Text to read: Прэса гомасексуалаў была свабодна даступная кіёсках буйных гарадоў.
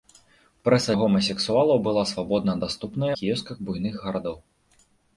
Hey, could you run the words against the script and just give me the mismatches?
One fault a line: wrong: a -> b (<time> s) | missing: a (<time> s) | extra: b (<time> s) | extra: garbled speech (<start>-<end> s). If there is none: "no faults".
no faults